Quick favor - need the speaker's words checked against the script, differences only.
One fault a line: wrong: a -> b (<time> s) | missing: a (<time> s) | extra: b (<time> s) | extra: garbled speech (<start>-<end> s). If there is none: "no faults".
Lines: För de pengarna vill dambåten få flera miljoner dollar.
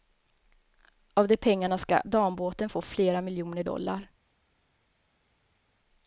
wrong: För -> Av (1.1 s)
wrong: vill -> ska (1.8 s)